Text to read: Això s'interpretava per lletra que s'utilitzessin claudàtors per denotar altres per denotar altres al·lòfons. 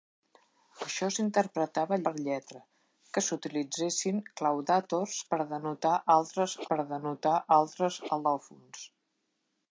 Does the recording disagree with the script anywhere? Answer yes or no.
no